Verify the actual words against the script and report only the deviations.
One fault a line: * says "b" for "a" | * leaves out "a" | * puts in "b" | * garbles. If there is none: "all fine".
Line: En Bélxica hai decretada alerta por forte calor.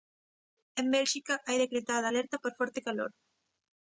all fine